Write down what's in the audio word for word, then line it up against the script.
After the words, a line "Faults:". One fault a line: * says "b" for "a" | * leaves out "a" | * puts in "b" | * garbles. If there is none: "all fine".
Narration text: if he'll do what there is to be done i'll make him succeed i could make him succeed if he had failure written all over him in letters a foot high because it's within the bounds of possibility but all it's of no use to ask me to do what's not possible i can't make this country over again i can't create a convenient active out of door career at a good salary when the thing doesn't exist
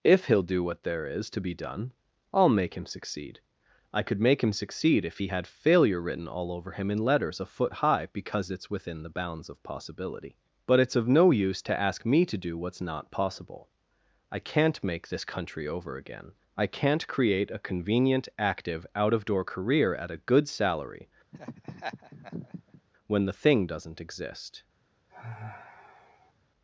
if he'll do what there is to be done i'll make him succeed i could make him succeed if he had failure written all over him in letters a foot high because it's within the bounds of possibility but it's of no use to ask me to do what's not possible i can't make this country over again i can't create a convenient active out of door career at a good salary when the thing doesn't exist
Faults:
* leaves out "all"